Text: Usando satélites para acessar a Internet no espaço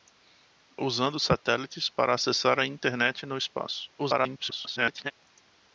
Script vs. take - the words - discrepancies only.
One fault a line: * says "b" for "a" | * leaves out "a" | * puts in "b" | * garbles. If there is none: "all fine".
* garbles